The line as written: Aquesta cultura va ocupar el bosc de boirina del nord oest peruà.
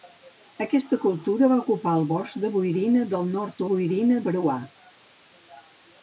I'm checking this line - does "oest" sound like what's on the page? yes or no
no